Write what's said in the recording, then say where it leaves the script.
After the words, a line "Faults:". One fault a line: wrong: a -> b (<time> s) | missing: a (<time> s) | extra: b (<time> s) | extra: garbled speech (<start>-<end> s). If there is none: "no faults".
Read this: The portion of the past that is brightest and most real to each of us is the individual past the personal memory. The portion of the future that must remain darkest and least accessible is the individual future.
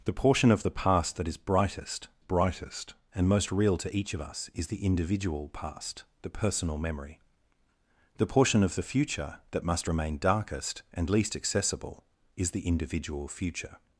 The portion of the past that is brightest brightest and most real to each of us is the individual past the personal memory. The portion of the future that must remain darkest and least accessible is the individual future.
Faults:
extra: brightest (2.2 s)